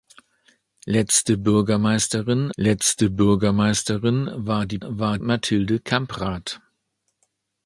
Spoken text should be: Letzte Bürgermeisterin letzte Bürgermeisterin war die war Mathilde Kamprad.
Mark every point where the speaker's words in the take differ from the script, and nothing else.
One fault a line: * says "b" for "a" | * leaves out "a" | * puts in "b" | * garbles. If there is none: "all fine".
all fine